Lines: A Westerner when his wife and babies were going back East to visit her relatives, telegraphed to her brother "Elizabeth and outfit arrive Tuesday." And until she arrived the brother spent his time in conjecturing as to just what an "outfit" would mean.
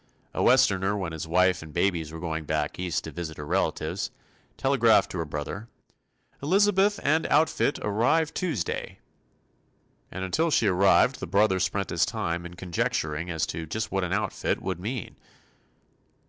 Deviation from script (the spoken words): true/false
false